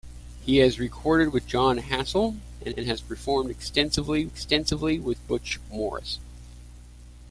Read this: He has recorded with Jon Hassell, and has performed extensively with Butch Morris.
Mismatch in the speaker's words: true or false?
true